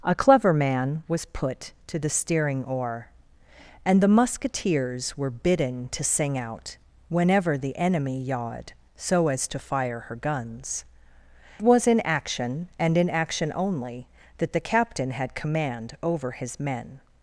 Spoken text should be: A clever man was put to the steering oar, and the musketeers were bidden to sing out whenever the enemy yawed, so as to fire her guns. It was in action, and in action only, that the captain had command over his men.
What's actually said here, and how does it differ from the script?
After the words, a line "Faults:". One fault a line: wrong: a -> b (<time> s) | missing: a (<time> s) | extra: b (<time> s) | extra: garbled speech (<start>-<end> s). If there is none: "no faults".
A clever man was put to the steering oar, and the musketeers were bidden to sing out whenever the enemy yawed, so as to fire her guns. Was in action, and in action only, that the captain had command over his men.
Faults:
missing: It (10.9 s)